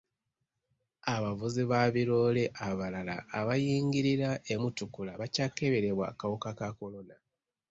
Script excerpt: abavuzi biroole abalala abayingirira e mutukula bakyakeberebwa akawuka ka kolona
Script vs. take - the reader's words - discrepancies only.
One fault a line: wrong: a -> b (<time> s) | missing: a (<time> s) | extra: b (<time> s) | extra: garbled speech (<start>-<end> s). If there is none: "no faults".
extra: ba (1.7 s)